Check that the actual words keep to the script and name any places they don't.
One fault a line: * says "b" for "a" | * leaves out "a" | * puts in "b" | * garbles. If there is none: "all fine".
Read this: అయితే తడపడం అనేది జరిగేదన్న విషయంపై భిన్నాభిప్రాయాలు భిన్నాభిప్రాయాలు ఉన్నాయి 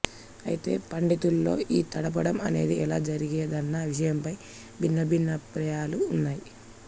* puts in "పండితుల్లో ఈ"
* puts in "ఎలా"
* leaves out "భిన్నాభిప్రాయాలు"